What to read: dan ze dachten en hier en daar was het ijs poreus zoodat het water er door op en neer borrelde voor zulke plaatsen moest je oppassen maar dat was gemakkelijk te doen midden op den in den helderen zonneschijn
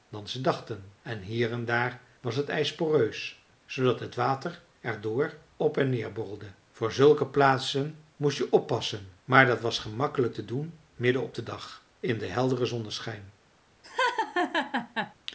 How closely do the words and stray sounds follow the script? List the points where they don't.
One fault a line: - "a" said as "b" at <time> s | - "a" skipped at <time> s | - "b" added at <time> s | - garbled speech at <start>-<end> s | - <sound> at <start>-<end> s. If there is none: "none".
- "dag" added at 11.4 s
- laugh at 13.8-15.1 s